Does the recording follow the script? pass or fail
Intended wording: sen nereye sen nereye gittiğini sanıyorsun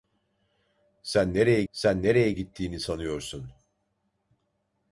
pass